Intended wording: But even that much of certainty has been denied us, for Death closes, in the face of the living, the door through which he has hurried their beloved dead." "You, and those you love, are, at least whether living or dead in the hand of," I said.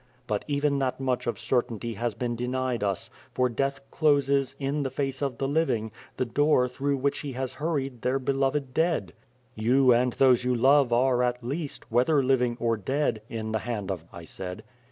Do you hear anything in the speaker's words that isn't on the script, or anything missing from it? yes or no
no